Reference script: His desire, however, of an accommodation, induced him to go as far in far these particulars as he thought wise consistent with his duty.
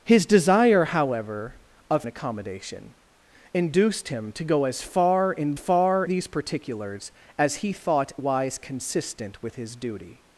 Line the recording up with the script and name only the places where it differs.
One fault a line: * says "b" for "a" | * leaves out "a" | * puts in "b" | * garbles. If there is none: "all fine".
all fine